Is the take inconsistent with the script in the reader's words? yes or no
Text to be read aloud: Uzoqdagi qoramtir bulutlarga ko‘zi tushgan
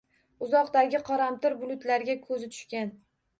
no